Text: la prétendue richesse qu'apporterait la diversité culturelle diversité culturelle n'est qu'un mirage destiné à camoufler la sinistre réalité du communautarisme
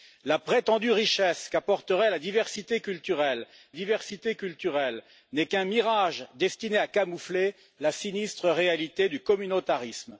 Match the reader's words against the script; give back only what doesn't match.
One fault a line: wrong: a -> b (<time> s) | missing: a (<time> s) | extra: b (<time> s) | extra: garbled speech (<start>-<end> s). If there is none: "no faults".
no faults